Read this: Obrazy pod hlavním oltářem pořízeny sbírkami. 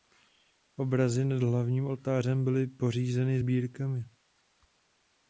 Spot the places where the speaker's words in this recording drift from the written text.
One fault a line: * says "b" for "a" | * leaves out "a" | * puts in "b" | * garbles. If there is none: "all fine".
* says "nad" for "pod"
* puts in "byly"